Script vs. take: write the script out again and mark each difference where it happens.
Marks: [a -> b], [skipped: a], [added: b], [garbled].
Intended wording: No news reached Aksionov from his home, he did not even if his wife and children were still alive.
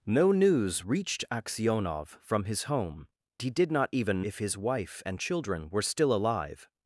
No news reached Aksionov from his home, he did not even if his wife and children were still alive.